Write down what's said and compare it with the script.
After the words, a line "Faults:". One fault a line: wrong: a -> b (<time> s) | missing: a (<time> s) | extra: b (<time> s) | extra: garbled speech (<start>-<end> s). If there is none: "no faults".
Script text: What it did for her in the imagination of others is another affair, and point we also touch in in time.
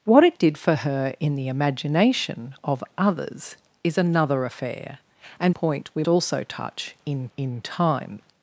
What it did for her in the imagination of others is another affair, and point we also touch in in time.
Faults:
no faults